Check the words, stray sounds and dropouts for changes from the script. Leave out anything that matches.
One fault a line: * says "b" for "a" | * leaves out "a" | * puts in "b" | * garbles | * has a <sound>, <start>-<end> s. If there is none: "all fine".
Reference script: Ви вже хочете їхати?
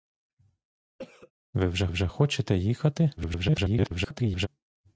* has a cough, 1.0-1.3 s
* puts in "вже"
* garbles